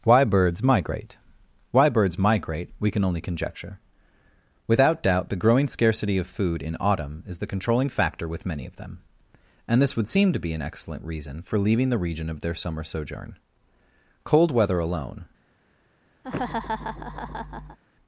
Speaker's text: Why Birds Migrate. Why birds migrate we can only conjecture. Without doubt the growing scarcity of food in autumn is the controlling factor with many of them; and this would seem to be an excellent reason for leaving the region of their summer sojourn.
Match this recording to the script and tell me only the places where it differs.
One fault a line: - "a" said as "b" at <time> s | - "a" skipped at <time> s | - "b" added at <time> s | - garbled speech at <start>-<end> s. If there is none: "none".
- "Cold weather alone" added at 14.2 s